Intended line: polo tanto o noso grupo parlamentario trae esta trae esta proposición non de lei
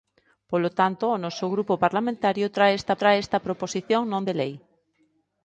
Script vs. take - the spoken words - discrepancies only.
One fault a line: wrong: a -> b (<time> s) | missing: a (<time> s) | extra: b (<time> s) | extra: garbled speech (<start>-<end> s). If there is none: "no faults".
no faults